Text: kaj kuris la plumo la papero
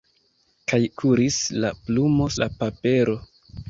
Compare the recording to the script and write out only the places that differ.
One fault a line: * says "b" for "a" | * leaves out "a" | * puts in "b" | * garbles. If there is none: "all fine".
all fine